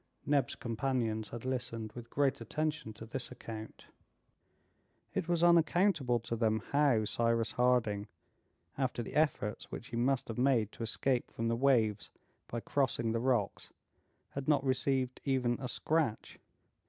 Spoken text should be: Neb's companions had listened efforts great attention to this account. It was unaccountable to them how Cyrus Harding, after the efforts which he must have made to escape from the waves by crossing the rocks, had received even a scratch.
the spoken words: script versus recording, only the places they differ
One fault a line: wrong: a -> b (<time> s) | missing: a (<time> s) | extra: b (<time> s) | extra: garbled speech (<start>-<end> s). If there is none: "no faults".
wrong: efforts -> with (1.9 s)
extra: not (14.5 s)